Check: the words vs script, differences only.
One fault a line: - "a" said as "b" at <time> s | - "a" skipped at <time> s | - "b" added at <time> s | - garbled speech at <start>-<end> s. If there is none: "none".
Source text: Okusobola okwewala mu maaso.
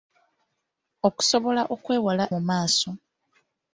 none